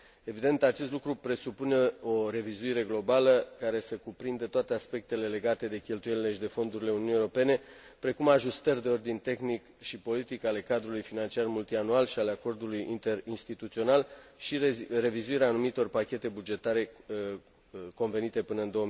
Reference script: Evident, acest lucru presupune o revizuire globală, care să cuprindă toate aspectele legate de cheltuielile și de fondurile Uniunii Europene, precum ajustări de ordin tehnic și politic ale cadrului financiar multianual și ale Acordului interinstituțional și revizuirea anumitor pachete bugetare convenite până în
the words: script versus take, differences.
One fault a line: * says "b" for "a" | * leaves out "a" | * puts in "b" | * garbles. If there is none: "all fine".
all fine